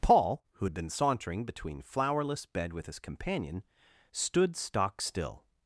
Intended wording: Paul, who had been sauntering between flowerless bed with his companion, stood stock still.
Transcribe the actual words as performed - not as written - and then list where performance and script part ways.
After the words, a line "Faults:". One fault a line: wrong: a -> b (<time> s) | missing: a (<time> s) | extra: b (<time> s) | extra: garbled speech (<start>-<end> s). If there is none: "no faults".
Paul, who had been sauntering between flowerless bed with his companion, stood stock still.
Faults:
no faults